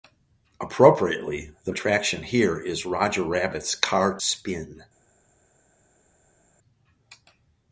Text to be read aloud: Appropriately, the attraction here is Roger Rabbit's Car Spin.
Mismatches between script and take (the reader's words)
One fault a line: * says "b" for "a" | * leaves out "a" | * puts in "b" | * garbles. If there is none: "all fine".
all fine